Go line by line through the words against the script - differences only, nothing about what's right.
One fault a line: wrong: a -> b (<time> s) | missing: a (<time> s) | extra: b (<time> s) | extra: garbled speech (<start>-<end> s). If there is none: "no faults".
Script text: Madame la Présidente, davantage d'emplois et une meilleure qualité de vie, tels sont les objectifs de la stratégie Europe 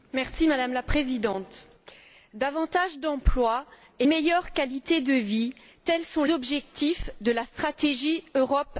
missing: une (4.1 s)
missing: les (6.2 s)